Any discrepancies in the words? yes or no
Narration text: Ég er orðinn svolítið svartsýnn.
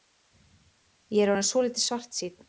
no